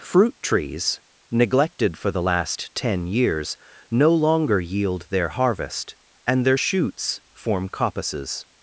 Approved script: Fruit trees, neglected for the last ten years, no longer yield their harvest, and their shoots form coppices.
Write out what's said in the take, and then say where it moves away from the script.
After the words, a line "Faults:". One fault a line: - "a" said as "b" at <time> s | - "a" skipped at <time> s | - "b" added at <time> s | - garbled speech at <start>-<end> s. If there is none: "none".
Fruit trees, neglected for the last ten years, no longer yield their harvest, and their shoots form coppices.
Faults:
none